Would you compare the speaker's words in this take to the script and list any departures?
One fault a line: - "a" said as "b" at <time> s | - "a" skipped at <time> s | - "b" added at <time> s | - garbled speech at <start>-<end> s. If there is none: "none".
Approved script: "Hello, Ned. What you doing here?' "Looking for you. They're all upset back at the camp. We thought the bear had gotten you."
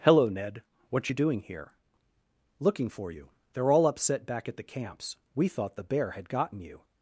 - "camp" said as "camps" at 4.6 s